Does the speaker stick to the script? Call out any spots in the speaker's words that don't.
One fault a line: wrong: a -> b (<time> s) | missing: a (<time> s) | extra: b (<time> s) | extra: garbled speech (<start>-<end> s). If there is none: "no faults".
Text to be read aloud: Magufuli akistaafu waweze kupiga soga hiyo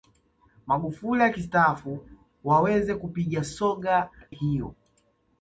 no faults